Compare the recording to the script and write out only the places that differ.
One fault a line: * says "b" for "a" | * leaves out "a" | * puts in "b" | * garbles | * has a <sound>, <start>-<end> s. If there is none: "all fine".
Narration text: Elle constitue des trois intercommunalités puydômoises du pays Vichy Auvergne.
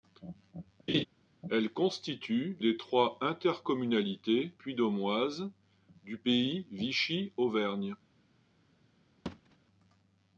* has a laugh, 0.9-1.1 s
* has a thud, 9.3-9.6 s